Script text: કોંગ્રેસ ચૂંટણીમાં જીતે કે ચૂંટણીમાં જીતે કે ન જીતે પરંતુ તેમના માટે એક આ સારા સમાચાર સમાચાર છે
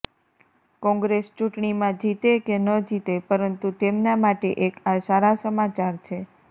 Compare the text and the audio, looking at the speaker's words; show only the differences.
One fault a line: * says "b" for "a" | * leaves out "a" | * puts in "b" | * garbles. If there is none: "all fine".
* leaves out "ચૂંટણીમાં જીતે કે"
* leaves out "સમાચાર"